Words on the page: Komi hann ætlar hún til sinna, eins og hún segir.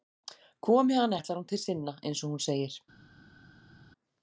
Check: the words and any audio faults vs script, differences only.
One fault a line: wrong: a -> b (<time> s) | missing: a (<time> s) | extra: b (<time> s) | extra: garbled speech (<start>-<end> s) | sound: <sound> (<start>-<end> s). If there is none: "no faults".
no faults